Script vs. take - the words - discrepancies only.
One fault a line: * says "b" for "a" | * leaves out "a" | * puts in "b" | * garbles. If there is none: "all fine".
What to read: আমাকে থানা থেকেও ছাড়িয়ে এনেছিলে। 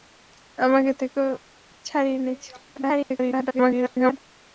* leaves out "থানা"
* garbles